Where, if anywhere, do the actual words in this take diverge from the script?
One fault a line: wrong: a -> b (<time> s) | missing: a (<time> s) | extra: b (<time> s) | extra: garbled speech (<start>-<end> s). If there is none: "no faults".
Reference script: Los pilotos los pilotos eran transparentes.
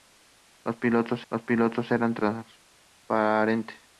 no faults